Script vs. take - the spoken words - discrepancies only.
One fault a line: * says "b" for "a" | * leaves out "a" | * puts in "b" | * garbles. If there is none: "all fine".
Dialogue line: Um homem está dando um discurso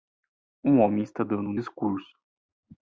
all fine